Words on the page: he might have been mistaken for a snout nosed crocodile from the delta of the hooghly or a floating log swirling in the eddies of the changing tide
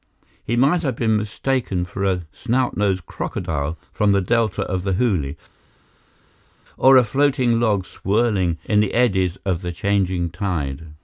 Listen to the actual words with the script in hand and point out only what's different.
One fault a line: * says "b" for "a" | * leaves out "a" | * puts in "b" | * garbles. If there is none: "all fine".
all fine